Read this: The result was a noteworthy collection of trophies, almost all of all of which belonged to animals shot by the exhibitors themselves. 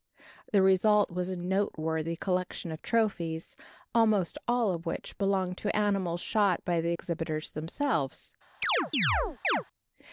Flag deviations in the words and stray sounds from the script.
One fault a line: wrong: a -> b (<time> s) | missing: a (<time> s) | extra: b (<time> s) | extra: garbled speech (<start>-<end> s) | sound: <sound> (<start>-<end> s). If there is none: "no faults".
missing: all of (4.8 s)
sound: chirp (8.6-9.6 s)